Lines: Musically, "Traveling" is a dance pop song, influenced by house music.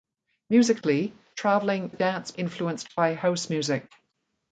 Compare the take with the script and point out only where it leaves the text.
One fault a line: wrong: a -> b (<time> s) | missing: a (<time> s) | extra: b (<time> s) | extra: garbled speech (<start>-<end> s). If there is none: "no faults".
missing: is (1.9 s)
missing: pop song (2.3 s)